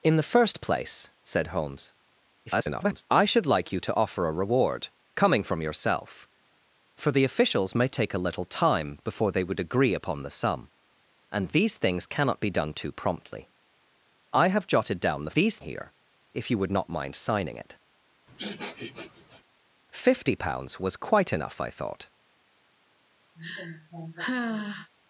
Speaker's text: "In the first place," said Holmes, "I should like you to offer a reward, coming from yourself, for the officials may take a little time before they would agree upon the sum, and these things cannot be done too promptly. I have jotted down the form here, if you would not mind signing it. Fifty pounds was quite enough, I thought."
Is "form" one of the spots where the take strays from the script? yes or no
yes